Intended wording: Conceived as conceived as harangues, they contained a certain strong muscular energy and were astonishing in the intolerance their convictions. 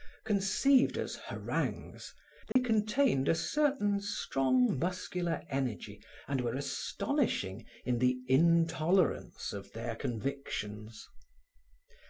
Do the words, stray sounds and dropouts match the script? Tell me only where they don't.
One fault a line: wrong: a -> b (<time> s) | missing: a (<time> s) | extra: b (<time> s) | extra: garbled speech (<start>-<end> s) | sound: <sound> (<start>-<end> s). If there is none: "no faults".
missing: conceived as (1.1 s)
sound: dropout (2.5-2.6 s)
extra: of (9.5 s)